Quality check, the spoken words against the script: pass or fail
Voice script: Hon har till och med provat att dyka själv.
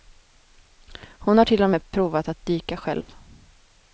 pass